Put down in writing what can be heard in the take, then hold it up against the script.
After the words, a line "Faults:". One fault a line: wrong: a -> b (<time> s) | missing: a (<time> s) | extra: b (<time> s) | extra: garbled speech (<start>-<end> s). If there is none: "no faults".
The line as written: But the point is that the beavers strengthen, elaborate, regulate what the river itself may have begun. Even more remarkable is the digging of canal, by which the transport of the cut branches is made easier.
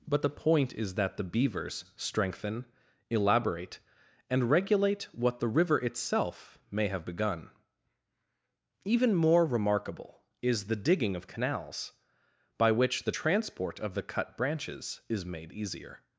But the point is that the beavers strengthen, elaborate, and regulate what the river itself may have begun. Even more remarkable is the digging of canals, by which the transport of the cut branches is made easier.
Faults:
extra: and (4.3 s)
wrong: canal -> canals (11.3 s)